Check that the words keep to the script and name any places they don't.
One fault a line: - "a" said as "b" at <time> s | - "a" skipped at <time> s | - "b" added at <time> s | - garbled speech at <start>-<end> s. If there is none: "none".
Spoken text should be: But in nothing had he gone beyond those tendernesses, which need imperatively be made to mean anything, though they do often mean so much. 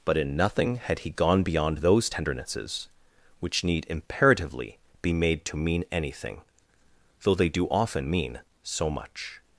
none